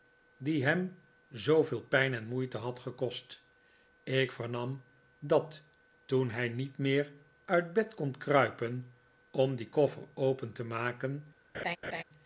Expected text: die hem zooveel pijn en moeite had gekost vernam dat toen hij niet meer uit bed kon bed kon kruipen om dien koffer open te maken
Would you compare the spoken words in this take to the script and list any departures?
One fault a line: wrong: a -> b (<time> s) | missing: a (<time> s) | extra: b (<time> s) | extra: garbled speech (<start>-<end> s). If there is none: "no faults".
extra: ik (4.0 s)
missing: bed kon (8.2 s)